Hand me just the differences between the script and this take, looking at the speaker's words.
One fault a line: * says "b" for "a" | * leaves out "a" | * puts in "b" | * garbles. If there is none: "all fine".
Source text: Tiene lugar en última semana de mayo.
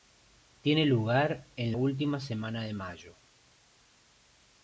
all fine